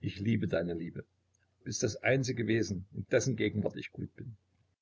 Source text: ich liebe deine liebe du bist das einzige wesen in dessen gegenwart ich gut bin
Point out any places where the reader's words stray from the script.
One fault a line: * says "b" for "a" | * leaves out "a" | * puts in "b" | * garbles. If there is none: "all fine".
* leaves out "du"